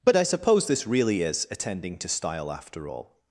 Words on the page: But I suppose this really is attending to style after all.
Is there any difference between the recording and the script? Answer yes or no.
no